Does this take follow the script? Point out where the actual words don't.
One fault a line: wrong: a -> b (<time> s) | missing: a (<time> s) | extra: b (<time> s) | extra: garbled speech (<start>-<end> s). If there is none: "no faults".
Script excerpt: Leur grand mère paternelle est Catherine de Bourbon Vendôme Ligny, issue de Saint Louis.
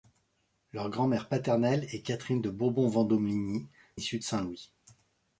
no faults